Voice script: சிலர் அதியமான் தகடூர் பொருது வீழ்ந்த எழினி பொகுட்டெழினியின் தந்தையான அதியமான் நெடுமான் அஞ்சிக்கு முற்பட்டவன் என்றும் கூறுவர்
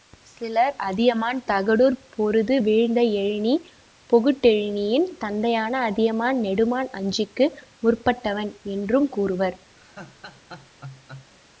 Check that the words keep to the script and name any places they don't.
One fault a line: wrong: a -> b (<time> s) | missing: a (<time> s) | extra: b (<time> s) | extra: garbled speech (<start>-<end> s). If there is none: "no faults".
no faults